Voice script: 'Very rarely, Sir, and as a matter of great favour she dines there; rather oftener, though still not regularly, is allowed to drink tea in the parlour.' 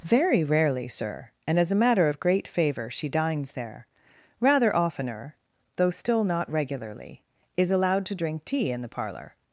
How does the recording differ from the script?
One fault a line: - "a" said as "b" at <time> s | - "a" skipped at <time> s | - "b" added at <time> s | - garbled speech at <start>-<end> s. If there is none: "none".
none